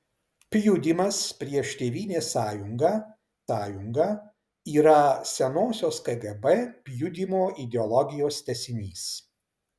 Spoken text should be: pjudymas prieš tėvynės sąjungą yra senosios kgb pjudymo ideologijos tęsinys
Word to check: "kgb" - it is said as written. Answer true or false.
true